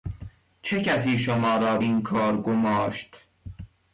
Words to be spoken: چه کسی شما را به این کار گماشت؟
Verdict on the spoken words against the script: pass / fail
fail